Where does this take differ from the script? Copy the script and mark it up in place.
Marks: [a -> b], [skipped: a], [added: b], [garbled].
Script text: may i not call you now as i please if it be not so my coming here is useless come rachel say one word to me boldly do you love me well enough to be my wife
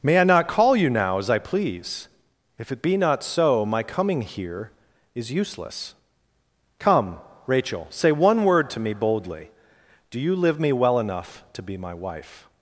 may i not call you now as i please if it be not so my coming here is useless come rachel say one word to me boldly do you [love -> live] me well enough to be my wife